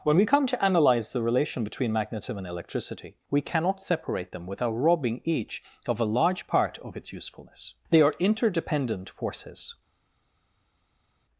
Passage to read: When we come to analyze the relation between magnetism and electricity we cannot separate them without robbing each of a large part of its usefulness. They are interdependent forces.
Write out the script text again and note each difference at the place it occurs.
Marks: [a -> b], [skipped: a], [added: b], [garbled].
When we come to analyze the relation between magnetism and electricity we cannot separate them without robbing each of a large part of its usefulness. They are interdependent forces.